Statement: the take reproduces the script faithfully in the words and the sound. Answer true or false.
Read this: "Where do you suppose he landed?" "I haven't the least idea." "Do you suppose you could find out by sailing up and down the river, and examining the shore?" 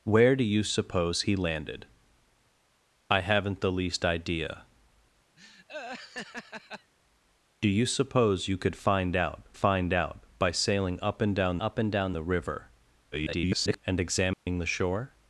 false